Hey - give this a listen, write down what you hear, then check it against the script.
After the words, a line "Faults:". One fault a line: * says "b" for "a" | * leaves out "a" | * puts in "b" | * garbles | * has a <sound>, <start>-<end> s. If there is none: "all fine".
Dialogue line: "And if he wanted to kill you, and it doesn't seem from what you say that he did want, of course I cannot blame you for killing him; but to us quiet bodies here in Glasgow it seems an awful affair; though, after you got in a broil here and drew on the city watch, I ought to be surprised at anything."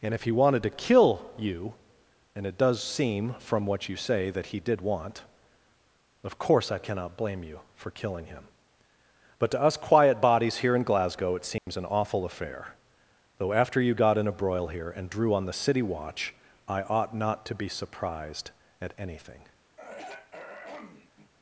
"And if he wanted to kill you, and it does seem from what you say that he did want, of course I cannot blame you for killing him; but to us quiet bodies here in Glasgow it seems an awful affair; though, after you got in a broil here and drew on the city watch, I ought not to be surprised at anything."
Faults:
* says "does" for "doesn't"
* has a dropout, 11.6-11.7 s
* puts in "not"
* has a throat clearing, 19.8-21.3 s